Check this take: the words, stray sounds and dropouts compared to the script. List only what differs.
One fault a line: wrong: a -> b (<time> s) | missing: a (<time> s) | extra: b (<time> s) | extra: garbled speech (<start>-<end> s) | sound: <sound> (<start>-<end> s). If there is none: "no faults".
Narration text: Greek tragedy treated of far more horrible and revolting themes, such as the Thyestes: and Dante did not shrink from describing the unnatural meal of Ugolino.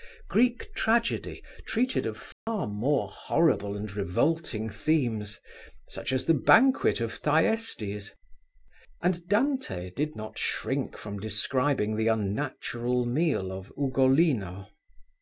sound: dropout (2.3-2.5 s)
extra: banquet of (6.3 s)